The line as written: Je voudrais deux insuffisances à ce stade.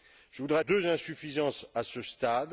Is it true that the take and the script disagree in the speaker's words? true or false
false